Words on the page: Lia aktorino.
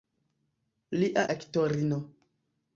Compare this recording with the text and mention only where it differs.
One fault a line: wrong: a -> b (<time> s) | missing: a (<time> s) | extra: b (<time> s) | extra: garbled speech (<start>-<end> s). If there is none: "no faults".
no faults